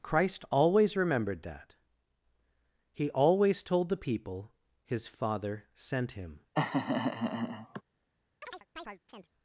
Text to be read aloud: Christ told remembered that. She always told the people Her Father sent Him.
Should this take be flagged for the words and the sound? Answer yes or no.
yes